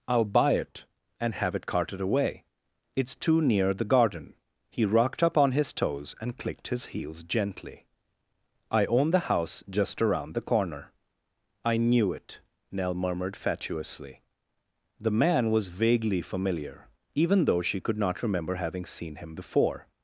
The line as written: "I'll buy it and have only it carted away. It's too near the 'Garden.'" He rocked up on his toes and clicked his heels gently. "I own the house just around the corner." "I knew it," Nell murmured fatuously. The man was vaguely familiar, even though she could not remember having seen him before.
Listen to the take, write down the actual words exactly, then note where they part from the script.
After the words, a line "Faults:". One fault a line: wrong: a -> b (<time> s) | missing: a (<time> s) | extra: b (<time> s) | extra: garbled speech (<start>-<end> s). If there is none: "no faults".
"I'll buy it and have it carted away. It's too near the 'Garden.'" He rocked up on his toes and clicked his heels gently. "I own the house just around the corner." "I knew it," Nell murmured fatuously. The man was vaguely familiar, even though she could not remember having seen him before.
Faults:
missing: only (1.6 s)